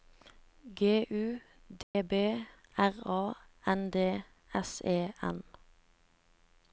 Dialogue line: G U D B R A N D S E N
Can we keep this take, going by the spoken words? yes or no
yes